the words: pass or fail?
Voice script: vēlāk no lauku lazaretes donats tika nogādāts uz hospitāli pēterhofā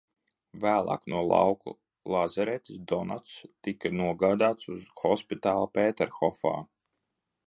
pass